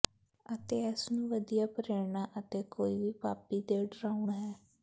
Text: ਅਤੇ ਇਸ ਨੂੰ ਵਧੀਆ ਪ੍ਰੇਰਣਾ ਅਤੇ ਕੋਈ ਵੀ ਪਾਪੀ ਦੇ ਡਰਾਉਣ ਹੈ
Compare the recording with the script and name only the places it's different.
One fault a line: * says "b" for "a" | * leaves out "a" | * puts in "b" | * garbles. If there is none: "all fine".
all fine